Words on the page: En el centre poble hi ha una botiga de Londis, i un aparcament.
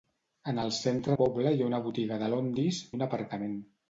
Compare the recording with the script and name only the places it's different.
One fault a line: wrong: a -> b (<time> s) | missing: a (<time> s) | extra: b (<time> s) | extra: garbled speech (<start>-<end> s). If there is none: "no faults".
no faults